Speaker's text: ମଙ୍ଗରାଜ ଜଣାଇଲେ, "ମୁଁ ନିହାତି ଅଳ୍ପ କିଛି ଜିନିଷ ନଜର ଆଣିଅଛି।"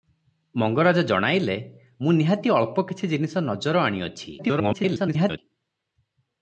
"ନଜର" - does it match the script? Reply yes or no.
yes